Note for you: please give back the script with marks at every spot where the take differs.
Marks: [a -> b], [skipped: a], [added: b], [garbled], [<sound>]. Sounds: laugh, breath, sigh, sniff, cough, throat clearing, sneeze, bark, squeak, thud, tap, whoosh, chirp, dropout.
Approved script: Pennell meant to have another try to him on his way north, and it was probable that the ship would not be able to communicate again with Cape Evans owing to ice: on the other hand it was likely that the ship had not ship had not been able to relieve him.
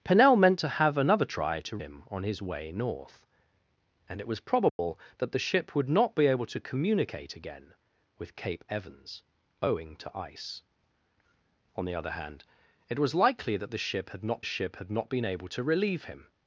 Pennell meant to have another try to him on his way north, and it was probable [dropout] that the ship would not be able to communicate again with Cape Evans owing to ice: on the other hand it was likely that the ship had not ship had not been able to relieve him.